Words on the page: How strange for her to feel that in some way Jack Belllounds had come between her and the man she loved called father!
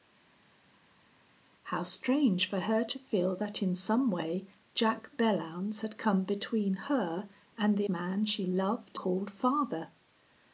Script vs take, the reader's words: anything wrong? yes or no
no